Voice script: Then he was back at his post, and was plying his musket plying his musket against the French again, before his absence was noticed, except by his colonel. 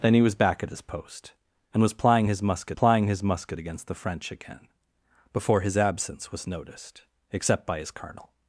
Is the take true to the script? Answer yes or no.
yes